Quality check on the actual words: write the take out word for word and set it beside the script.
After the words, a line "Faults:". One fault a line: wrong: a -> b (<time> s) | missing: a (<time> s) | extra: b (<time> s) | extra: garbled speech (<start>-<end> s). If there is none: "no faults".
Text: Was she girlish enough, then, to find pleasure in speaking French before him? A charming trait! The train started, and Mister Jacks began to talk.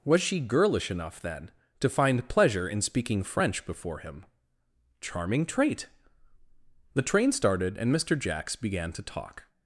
Was she girlish enough, then, to find pleasure in speaking French before him? charming trait! The train started, and Mister Jacks began to talk.
Faults:
missing: A (4.2 s)